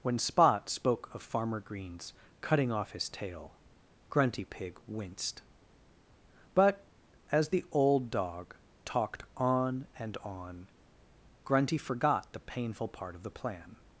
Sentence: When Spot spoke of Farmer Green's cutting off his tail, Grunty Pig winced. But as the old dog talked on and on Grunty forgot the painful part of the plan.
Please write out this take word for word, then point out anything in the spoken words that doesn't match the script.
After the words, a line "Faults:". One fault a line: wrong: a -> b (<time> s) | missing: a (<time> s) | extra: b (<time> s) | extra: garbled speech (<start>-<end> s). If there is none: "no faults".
When Spot spoke of Farmer Green's cutting off his tail, Grunty Pig winced. But as the old dog talked on and on Grunty forgot the painful part of the plan.
Faults:
no faults